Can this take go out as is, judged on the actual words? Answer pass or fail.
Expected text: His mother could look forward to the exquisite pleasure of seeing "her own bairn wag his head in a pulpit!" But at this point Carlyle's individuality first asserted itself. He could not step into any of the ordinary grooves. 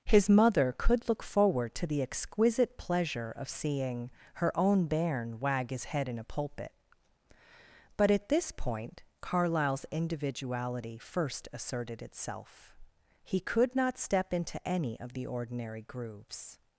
pass